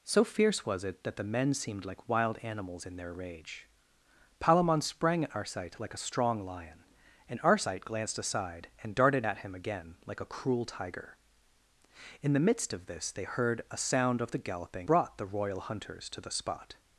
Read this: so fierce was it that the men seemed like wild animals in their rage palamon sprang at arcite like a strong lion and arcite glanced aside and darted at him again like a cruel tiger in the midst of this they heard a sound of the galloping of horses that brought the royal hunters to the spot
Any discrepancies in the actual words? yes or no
yes